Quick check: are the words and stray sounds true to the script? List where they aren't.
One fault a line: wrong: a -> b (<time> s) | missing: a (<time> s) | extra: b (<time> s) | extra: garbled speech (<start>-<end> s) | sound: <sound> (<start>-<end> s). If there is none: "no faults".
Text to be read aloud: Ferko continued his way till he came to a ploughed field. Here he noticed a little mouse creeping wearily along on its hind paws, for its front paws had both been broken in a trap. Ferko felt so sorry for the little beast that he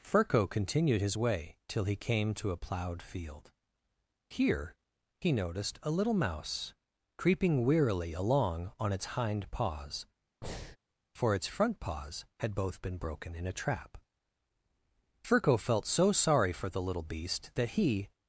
sound: breath (10.4-10.8 s)